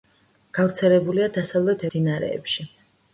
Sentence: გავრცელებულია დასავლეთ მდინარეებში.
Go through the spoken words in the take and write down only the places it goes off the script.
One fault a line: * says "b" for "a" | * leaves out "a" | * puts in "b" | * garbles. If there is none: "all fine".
all fine